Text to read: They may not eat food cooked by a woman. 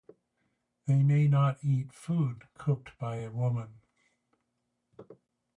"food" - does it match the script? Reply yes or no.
yes